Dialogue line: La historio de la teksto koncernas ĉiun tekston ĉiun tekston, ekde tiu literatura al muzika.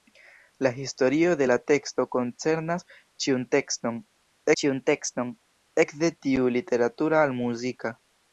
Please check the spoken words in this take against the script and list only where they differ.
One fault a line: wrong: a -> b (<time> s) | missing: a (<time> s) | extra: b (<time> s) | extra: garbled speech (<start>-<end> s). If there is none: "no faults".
no faults